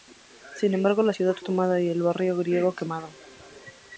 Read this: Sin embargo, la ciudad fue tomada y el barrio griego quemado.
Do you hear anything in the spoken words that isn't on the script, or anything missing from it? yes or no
yes